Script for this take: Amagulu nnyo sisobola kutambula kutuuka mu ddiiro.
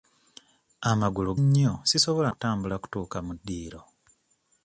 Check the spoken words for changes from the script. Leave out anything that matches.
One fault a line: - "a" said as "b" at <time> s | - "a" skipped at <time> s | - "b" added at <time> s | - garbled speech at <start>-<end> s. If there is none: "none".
none